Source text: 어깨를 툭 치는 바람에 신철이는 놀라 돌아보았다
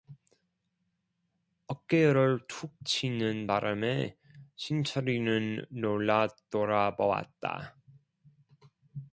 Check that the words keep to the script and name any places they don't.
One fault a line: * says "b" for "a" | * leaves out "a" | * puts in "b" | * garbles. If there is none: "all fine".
all fine